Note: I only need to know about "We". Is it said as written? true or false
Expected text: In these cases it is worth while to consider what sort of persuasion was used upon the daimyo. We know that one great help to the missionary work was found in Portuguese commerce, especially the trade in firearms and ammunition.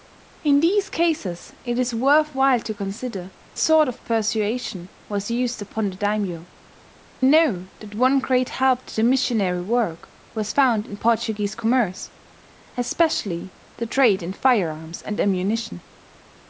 false